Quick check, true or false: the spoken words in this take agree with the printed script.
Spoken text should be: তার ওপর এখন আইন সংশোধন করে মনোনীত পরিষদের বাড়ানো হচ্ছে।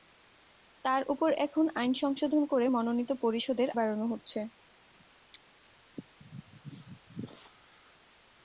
true